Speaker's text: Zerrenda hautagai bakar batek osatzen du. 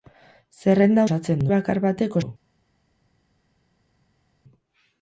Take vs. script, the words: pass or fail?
fail